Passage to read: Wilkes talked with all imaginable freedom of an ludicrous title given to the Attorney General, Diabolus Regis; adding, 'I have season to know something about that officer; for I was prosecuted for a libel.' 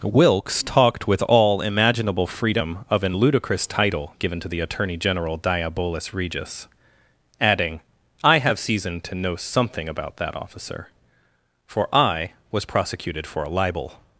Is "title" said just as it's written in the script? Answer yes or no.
yes